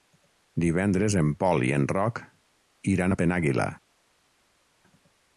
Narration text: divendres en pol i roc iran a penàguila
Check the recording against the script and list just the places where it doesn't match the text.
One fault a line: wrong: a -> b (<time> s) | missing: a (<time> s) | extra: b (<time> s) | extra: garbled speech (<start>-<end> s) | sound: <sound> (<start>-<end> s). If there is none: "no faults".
extra: en (1.8 s)